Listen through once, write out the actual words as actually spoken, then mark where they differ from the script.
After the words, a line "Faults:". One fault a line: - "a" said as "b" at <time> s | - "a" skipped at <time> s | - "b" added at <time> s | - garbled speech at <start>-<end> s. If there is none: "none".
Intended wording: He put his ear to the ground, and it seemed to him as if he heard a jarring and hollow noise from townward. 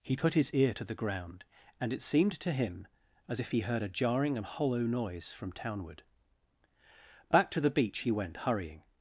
He put his ear to the ground, and it seemed to him as if he heard a jarring and hollow noise from townward. Back to the beach he went hurrying
Faults:
- "Back to the beach he went hurrying" added at 7.3 s